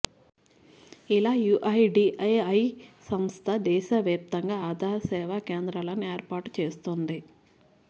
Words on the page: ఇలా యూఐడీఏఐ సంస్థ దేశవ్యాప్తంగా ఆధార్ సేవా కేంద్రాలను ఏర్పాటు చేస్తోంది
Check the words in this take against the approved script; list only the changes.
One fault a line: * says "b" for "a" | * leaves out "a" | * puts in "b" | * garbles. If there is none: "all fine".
all fine